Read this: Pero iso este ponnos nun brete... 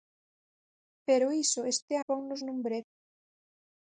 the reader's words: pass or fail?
pass